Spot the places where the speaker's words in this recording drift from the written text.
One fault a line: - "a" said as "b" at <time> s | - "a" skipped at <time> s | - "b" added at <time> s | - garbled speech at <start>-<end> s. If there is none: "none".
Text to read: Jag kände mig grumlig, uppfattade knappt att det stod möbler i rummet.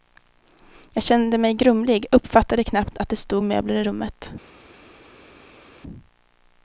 none